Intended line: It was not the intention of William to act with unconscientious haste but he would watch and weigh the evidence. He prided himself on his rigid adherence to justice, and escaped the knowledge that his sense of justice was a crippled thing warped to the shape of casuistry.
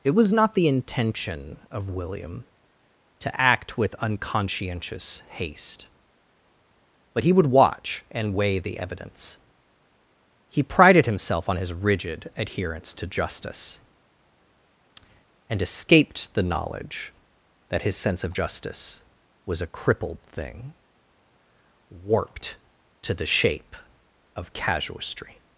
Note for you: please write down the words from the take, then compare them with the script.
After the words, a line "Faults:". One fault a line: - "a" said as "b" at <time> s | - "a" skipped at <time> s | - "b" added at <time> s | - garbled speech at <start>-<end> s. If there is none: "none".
It was not the intention of William to act with unconscientious haste but he would watch and weigh the evidence. He prided himself on his rigid adherence to justice, and escaped the knowledge that his sense of justice was a crippled thing warped to the shape of casuistry.
Faults:
none